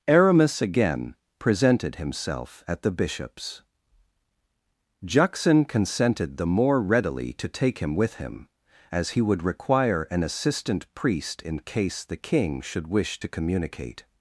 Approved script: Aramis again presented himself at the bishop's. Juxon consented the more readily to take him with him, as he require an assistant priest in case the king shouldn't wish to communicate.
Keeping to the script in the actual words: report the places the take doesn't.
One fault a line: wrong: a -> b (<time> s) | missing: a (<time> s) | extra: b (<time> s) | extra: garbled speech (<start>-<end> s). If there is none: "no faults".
extra: would (9.2 s)
wrong: shouldn't -> should (12.6 s)